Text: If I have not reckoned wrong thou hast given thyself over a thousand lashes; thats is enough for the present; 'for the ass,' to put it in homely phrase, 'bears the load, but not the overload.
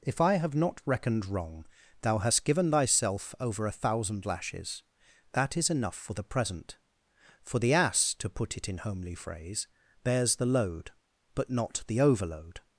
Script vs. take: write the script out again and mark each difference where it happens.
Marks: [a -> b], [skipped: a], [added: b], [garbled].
If I have not reckoned wrong thou hast given thyself over a thousand lashes; [thats -> that] is enough for the present; 'for the ass,' to put it in homely phrase, 'bears the load, but not the overload.